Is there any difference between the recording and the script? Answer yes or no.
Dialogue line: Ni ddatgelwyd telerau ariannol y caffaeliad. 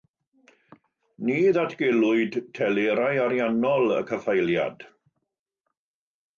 no